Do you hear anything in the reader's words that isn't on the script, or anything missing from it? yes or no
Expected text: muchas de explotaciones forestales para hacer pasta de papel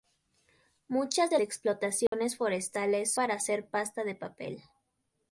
no